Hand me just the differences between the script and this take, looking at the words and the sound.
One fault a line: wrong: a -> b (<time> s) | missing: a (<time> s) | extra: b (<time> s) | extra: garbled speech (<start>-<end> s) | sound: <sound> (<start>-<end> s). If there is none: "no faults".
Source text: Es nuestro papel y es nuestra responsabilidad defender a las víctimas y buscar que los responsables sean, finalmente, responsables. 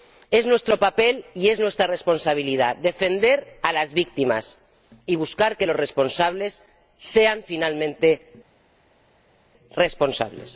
no faults